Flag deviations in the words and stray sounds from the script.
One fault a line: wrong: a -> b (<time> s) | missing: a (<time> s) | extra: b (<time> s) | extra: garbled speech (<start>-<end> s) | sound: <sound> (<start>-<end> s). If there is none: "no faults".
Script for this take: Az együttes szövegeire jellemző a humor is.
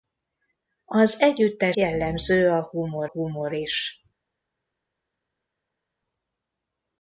missing: szövegeire (1.8 s)
extra: humor (3.0 s)